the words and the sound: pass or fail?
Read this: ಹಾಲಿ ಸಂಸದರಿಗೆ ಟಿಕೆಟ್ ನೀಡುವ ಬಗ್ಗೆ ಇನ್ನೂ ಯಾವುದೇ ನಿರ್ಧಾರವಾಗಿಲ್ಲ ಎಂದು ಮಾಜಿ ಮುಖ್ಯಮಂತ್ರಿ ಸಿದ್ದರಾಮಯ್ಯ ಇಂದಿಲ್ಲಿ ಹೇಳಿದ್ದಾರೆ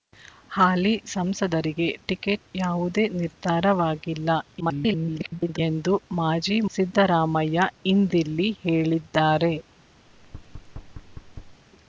fail